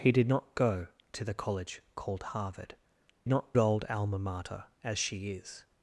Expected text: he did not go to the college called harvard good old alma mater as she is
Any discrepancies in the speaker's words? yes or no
yes